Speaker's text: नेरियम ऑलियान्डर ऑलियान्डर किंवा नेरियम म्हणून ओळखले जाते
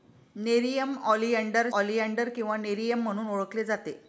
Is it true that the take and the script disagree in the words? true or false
false